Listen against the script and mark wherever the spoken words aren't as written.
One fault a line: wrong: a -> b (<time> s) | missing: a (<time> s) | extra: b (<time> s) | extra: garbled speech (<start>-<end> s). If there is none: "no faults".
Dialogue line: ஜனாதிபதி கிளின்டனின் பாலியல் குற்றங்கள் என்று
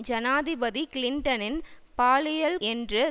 missing: குற்றங்கள் (2.6 s)